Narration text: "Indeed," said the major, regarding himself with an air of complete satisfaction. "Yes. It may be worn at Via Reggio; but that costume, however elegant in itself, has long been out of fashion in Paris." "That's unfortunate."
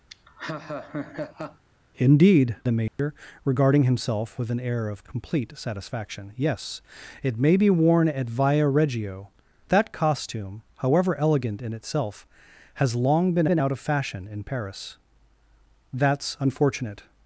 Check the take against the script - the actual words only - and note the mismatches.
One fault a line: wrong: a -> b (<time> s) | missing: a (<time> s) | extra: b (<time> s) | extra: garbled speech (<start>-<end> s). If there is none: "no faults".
missing: said (2.6 s)
missing: but (9.3 s)
extra: been (13.5 s)